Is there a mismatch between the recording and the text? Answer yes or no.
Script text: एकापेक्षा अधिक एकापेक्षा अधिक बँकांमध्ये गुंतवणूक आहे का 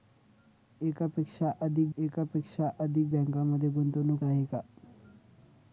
no